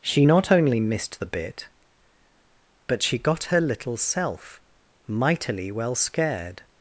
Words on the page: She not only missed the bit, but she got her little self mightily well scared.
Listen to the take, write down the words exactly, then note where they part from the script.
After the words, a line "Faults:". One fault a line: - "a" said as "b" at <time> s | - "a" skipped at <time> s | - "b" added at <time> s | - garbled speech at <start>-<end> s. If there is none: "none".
She not only missed the bit, but she got her little self mightily well scared.
Faults:
none